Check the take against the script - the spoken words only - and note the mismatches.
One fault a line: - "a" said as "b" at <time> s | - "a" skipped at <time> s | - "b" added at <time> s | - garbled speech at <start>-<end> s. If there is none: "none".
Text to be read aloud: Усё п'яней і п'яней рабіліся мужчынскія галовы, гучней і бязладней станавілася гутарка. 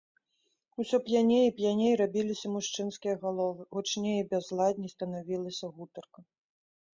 none